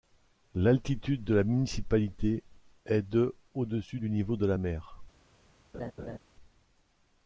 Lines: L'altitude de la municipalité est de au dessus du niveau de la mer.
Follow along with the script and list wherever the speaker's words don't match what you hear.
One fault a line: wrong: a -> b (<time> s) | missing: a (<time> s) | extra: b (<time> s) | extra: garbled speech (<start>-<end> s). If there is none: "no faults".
no faults